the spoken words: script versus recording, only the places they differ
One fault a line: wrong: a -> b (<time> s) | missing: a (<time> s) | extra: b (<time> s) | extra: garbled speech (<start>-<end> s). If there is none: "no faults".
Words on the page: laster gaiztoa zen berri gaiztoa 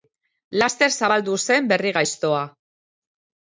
wrong: gaiztoa -> zabaldu (1.0 s)